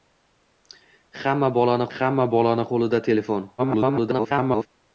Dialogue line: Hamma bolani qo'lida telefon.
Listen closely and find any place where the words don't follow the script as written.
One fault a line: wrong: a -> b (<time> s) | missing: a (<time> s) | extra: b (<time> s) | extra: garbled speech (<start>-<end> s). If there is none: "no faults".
extra: hamma bolani (2.0 s)
extra: garbled speech (3.6-4.7 s)